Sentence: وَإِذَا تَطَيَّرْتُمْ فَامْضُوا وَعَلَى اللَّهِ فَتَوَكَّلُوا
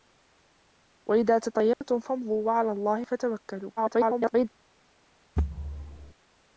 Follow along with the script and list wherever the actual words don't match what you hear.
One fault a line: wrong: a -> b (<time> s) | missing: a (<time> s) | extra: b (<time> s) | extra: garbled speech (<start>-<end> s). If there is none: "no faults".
extra: garbled speech (3.8-4.5 s)